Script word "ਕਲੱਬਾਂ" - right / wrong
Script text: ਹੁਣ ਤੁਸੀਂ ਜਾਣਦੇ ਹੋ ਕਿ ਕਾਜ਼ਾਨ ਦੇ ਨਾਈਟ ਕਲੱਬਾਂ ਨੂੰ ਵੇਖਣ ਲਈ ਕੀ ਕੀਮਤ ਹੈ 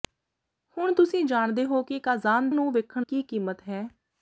wrong